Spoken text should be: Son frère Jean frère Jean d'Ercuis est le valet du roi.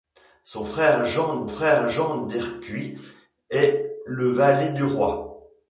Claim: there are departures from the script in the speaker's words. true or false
false